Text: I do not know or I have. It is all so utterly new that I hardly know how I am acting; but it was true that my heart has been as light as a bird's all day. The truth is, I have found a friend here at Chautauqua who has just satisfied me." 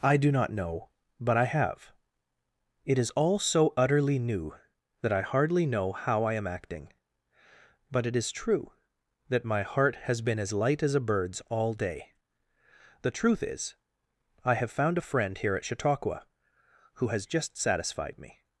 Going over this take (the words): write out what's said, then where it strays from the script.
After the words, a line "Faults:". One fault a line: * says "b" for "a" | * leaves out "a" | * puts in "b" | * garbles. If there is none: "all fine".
I do not know but I have. It is all so utterly new that I hardly know how I am acting; but it is true that my heart has been as light as a bird's all day. The truth is, I have found a friend here at Chautauqua who has just satisfied me."
Faults:
* says "but" for "or"
* says "is" for "was"